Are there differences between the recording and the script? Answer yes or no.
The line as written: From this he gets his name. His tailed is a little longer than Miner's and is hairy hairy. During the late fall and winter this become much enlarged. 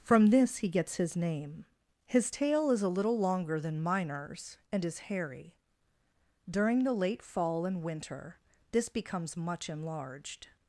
yes